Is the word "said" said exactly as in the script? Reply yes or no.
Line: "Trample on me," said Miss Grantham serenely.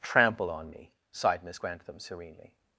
no